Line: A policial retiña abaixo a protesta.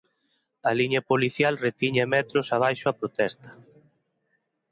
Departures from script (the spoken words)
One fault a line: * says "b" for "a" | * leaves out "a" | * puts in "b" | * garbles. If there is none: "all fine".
* puts in "liña"
* puts in "metros"